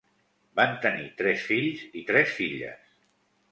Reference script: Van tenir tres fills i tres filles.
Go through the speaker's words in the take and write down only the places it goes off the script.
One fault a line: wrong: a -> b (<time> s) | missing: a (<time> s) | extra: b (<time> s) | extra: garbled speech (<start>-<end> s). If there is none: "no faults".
no faults